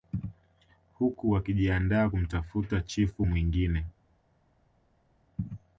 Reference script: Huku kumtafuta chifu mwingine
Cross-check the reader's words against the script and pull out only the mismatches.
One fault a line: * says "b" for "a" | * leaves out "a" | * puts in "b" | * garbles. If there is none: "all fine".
* puts in "wakijiandaa"